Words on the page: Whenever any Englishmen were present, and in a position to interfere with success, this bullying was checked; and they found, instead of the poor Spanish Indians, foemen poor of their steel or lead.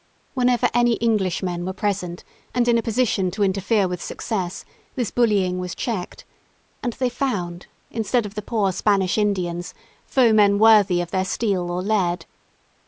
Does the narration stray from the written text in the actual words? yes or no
yes